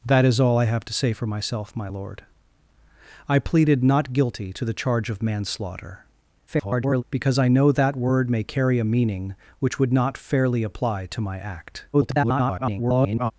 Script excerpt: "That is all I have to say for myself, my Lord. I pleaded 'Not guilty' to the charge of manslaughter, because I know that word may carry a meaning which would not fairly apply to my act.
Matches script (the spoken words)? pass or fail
fail